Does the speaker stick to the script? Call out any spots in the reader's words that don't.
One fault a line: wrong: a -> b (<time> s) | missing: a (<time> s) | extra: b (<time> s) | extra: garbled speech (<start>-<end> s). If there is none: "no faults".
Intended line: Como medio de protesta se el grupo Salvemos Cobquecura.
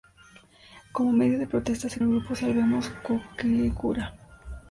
no faults